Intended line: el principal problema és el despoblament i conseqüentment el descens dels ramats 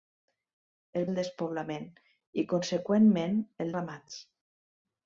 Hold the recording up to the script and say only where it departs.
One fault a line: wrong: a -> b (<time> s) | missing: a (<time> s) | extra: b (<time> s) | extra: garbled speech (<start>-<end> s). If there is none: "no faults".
missing: principal problema és (1.0 s)
missing: descens dels (3.7 s)